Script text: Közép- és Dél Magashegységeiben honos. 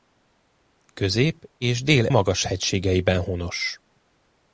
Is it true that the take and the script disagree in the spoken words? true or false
false